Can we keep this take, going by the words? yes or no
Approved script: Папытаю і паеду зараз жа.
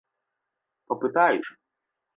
no